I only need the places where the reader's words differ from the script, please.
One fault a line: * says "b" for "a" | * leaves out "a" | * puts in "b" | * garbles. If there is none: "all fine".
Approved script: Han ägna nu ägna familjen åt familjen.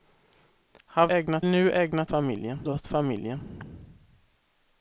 all fine